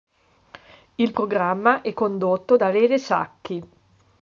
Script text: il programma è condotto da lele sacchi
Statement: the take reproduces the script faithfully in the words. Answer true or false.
true